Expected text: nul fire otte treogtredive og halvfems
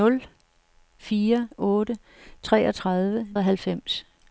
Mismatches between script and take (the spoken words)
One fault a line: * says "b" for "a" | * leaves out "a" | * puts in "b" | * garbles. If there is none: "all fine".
all fine